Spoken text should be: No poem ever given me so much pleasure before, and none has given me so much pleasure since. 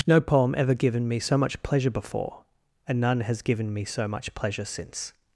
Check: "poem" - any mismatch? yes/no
no